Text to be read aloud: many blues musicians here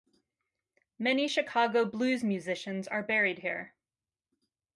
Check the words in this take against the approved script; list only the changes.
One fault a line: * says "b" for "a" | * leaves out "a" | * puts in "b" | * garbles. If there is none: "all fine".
* puts in "chicago"
* puts in "are buried"